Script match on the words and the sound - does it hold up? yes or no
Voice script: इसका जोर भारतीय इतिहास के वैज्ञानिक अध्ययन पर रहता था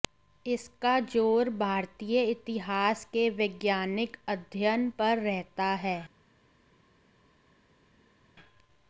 no